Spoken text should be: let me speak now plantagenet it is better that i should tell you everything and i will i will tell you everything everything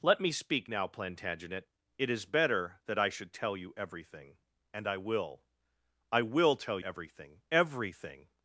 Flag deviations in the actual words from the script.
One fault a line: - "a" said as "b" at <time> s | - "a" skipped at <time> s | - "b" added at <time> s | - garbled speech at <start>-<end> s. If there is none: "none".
- "you" skipped at 6.8 s